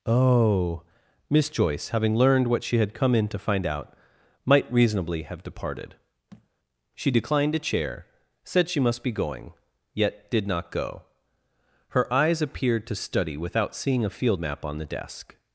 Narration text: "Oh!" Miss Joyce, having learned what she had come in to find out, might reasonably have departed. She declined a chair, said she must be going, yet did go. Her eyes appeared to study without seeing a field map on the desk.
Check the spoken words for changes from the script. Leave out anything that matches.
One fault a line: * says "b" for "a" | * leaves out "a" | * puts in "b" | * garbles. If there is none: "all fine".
* puts in "not"